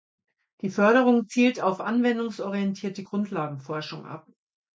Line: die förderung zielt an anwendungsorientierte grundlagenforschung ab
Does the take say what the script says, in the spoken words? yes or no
no